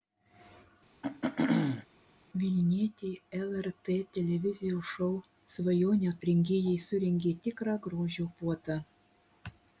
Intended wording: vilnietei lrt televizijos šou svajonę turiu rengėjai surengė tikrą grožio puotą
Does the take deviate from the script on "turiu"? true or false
true